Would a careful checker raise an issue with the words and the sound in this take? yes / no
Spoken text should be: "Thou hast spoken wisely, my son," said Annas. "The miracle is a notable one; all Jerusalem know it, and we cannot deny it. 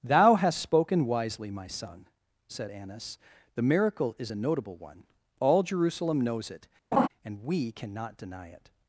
yes